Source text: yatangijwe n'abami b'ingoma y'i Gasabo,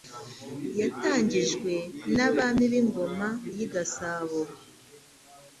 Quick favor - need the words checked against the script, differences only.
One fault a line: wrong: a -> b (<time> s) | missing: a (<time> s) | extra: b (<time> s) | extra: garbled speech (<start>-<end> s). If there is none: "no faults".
no faults